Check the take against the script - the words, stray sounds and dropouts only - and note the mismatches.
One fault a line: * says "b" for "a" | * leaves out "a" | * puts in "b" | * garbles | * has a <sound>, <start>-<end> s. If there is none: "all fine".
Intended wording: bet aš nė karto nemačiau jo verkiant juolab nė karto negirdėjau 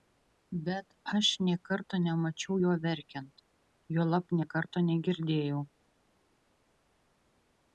all fine